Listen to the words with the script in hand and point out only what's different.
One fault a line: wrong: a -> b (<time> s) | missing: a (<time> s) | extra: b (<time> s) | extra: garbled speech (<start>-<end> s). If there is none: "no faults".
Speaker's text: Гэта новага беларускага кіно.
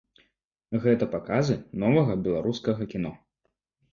extra: паказы (1.1 s)